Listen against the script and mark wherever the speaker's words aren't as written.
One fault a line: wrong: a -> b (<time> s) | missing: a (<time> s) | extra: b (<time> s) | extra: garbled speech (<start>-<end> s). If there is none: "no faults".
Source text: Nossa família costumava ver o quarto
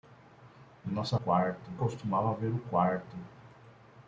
wrong: família -> quarto (1.2 s)